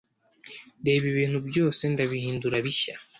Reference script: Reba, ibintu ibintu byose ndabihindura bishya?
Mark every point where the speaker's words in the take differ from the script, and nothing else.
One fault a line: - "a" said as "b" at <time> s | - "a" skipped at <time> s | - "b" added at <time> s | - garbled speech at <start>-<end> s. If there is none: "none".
- "ibintu" skipped at 1.4 s